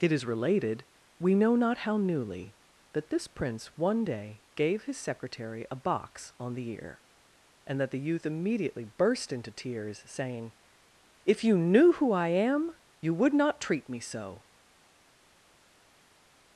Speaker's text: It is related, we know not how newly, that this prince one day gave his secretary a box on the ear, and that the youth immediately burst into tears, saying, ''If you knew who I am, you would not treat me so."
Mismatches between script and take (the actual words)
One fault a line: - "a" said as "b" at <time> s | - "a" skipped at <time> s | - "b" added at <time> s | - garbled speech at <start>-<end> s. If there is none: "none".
none